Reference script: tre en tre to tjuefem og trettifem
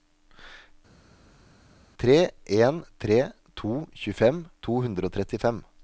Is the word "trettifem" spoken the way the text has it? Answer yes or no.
yes